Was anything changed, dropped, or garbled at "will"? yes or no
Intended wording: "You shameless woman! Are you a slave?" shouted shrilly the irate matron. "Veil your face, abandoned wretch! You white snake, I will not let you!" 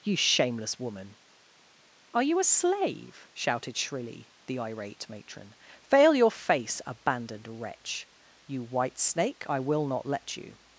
no